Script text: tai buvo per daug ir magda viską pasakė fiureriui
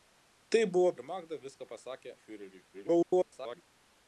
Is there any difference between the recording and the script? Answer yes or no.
yes